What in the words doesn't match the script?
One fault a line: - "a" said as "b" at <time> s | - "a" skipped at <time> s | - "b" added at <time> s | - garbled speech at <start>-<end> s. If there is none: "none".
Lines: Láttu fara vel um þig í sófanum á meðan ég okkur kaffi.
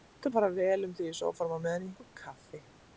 none